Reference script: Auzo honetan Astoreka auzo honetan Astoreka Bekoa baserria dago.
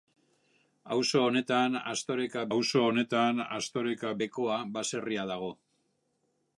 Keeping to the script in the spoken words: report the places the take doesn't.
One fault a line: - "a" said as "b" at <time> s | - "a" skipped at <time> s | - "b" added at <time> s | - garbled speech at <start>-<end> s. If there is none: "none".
none